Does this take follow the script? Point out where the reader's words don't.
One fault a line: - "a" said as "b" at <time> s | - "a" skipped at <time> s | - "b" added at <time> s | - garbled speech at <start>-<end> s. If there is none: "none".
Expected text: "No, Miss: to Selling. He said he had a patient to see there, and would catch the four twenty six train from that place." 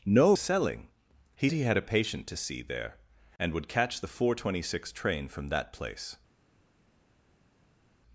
- "Miss to" skipped at 0.3 s
- "said" skipped at 1.5 s